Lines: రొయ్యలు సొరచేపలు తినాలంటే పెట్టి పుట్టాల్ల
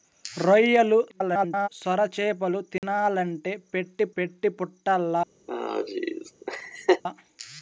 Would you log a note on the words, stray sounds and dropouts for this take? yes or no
yes